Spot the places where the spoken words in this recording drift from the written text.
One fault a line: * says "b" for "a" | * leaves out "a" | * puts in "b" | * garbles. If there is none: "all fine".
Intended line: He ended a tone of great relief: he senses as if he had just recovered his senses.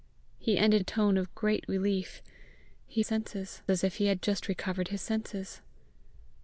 all fine